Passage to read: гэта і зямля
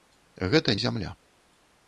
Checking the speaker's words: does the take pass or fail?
pass